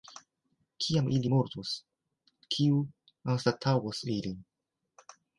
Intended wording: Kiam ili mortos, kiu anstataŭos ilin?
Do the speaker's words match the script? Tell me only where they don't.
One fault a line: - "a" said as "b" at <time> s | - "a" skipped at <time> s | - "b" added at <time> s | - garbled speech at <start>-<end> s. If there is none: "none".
none